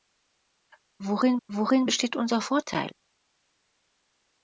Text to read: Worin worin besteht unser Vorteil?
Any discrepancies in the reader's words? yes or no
no